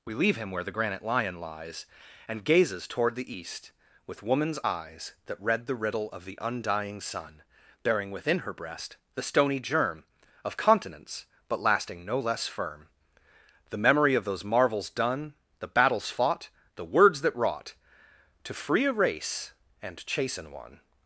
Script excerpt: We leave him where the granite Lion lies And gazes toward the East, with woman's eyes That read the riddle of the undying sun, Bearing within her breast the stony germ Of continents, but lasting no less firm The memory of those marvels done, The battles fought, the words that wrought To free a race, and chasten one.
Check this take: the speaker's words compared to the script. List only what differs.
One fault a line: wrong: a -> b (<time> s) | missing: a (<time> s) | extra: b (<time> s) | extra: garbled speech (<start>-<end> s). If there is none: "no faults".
no faults